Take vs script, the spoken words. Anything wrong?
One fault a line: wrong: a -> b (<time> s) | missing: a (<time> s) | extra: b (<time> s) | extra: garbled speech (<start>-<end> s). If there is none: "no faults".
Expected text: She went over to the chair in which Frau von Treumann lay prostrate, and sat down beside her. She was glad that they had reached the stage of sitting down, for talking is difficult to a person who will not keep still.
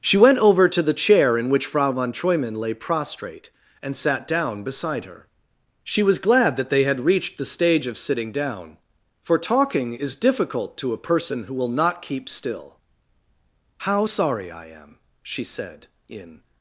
extra: How sorry I am she said in (13.9 s)